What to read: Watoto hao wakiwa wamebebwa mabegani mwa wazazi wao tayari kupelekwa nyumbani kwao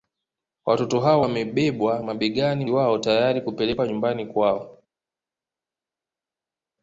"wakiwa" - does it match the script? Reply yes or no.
no